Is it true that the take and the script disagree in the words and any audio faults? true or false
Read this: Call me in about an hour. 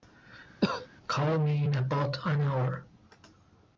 true